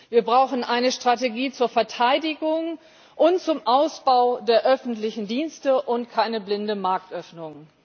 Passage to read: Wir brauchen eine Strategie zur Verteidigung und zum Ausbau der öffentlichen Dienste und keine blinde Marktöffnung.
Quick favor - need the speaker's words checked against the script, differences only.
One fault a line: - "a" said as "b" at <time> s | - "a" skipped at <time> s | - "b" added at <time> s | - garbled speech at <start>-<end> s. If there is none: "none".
none